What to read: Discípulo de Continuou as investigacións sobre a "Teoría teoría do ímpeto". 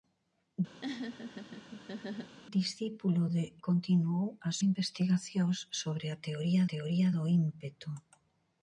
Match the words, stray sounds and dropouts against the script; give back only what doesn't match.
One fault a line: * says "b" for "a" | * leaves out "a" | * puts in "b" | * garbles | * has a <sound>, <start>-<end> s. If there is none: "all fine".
* has a laugh, 0.8-2.4 s